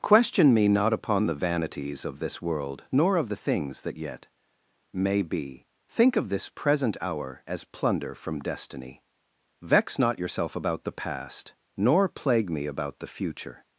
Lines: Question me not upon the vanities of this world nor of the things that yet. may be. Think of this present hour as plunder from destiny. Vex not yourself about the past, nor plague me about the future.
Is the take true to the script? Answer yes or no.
yes